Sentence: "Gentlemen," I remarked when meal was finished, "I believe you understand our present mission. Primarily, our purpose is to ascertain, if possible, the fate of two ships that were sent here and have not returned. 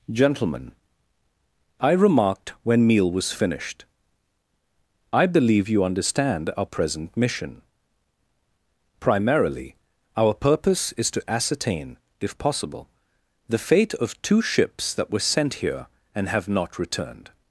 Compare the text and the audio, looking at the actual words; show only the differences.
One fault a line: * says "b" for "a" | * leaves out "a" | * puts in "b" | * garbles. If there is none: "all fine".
all fine